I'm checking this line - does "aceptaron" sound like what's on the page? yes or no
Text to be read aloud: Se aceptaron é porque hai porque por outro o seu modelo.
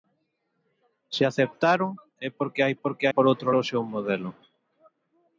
yes